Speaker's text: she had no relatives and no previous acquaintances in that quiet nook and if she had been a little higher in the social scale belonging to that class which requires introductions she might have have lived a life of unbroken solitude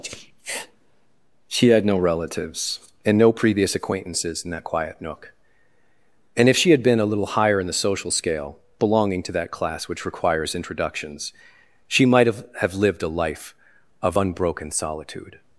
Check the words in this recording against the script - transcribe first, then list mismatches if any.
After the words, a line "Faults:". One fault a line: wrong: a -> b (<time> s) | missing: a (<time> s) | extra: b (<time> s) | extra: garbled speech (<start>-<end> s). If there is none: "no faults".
she had no relatives and no previous acquaintances in that quiet nook and if she had been a little higher in the social scale belonging to that class which requires introductions she might have have lived a life of unbroken solitude
Faults:
no faults